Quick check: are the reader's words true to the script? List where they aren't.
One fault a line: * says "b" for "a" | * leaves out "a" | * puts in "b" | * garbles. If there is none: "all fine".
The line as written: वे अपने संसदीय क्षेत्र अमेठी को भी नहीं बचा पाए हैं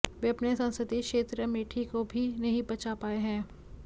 all fine